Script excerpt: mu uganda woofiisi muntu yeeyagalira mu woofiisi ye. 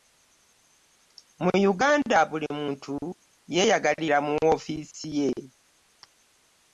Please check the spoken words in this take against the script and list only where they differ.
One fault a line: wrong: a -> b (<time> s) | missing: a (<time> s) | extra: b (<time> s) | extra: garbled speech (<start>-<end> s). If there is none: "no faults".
wrong: woofiisi -> buli (2.3 s)